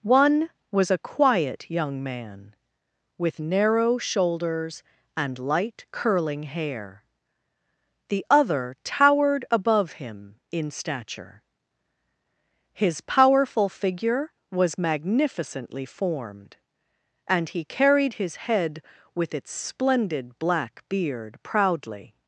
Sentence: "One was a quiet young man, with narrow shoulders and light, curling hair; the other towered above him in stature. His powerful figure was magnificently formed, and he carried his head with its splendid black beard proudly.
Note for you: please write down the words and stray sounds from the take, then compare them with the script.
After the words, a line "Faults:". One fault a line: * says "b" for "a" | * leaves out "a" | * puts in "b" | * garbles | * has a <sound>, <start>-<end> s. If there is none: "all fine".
"One was a quiet young man, with narrow shoulders and light, curling hair; the other towered above him in stature. His powerful figure was magnificently formed, and he carried his head with its splendid black beard proudly.
Faults:
all fine